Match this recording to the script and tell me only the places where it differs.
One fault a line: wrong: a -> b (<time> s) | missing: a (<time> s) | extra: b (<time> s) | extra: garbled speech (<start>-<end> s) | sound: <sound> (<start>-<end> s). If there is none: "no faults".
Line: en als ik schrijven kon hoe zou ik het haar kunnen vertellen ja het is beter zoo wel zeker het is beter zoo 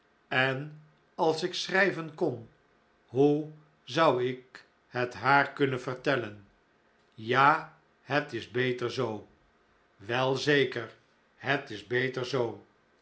no faults